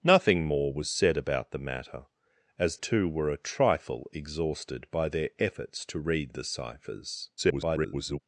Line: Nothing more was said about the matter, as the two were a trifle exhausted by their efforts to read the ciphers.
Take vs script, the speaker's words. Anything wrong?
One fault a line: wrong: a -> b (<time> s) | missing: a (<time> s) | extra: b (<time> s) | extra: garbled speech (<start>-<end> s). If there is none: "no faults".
missing: the (2.8 s)
extra: garbled speech (7.4-8.2 s)